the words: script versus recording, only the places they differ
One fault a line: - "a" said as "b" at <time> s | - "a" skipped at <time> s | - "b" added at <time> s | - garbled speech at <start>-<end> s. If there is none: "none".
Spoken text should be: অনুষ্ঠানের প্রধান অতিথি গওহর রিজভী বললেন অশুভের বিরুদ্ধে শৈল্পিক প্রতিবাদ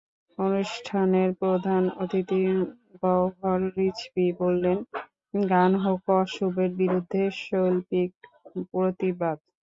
- "গান হোক" added at 5.3 s